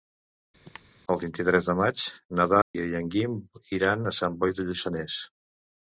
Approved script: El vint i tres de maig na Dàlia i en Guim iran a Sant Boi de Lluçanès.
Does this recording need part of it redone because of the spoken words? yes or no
no